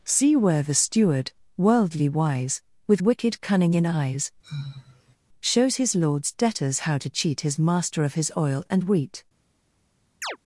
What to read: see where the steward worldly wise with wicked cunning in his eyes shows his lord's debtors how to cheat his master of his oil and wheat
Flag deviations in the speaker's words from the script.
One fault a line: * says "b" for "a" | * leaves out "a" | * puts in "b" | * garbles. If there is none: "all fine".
* leaves out "his"